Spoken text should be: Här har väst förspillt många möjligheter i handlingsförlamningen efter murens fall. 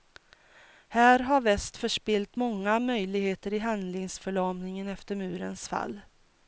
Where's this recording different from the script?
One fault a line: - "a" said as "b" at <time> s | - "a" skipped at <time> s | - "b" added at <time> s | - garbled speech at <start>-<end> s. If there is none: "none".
none